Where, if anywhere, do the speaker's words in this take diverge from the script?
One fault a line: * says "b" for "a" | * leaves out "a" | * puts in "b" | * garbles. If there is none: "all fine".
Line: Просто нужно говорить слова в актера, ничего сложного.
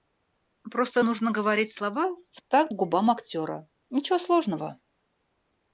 * puts in "такт губам"